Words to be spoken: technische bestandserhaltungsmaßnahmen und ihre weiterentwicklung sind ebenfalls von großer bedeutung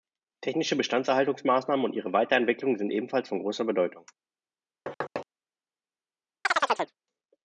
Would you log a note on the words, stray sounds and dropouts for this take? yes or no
yes